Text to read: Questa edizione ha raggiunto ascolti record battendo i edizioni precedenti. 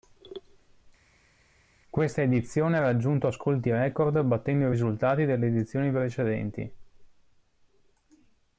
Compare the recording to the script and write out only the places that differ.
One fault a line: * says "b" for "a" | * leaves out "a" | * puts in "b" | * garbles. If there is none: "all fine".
* puts in "risultati delle"